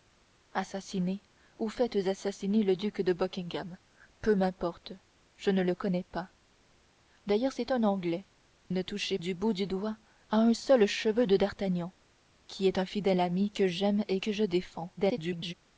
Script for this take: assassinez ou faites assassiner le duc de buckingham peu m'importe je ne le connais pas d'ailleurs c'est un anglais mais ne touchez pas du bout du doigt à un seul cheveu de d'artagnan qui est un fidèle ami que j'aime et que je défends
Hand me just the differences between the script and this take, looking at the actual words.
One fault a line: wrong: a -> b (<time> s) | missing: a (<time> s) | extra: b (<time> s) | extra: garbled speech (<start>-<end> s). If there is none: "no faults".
missing: mais (8.2 s)
missing: pas (9.2 s)
extra: garbled speech (15.0-15.5 s)